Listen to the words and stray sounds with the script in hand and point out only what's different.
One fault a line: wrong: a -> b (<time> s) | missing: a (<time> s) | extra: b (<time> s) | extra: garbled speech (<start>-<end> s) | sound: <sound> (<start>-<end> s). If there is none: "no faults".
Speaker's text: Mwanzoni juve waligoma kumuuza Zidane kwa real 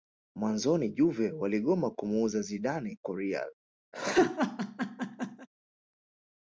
sound: laugh (3.9-5.5 s)